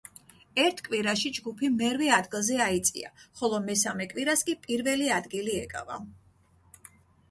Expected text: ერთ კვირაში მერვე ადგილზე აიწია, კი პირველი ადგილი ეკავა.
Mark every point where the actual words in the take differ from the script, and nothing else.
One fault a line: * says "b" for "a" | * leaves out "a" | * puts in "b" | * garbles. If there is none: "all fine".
* puts in "ჯგუფი"
* puts in "ხოლო მესამე კვირას"